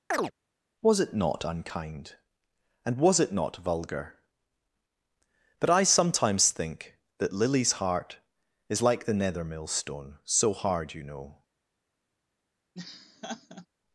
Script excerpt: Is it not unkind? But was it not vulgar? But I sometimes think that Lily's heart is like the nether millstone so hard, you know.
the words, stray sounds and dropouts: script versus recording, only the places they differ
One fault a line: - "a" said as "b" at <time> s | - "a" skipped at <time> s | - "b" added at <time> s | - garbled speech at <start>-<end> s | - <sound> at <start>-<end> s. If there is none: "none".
- chirp at 0.1-0.3 s
- "Is" said as "Was" at 0.8 s
- "But" said as "And" at 2.8 s
- laugh at 12.7-13.7 s